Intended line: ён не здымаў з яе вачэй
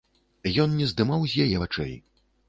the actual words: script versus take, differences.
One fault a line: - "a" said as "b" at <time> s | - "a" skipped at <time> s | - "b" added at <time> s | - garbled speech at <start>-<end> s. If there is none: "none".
none